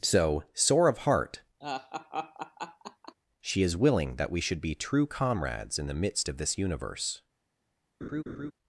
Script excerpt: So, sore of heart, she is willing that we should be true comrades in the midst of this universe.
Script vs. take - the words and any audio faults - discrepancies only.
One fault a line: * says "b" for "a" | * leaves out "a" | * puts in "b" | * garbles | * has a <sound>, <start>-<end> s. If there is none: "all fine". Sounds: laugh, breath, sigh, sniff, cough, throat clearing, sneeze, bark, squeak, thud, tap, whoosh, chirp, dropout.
* has a laugh, 1.6-3.1 s
* has a laugh, 8.0-8.5 s